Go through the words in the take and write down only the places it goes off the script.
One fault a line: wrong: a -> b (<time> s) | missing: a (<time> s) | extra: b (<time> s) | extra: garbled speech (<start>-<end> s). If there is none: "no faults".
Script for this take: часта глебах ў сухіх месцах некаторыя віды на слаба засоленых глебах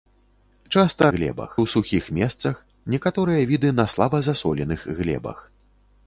no faults